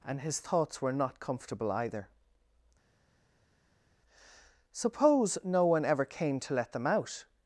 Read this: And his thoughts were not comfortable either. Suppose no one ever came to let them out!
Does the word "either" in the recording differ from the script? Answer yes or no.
no